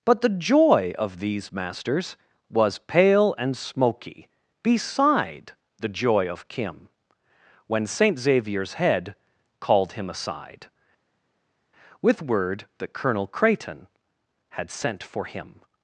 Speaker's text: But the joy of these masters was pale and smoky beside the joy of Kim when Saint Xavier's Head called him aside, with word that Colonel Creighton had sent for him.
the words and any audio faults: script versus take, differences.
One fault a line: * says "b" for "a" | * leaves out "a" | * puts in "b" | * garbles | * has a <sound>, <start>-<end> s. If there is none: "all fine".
all fine